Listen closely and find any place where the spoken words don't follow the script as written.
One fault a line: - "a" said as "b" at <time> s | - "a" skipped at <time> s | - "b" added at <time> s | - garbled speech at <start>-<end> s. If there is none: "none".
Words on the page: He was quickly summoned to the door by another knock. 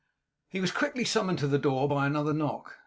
none